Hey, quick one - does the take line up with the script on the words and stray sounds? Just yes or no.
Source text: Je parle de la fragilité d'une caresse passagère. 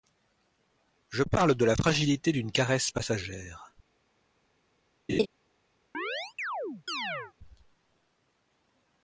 no